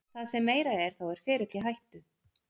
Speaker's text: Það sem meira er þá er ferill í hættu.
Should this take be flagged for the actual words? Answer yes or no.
no